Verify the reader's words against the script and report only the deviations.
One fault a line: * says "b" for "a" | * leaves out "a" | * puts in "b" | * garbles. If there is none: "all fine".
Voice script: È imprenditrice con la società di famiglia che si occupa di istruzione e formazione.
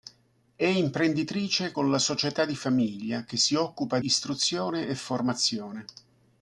* leaves out "di"